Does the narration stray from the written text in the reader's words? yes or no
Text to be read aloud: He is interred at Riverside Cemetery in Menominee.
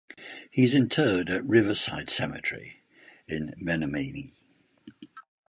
no